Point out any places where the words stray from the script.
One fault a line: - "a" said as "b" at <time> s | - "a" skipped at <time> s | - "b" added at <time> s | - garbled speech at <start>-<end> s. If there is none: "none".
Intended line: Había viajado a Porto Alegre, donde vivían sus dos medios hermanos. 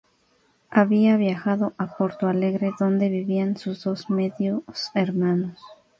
none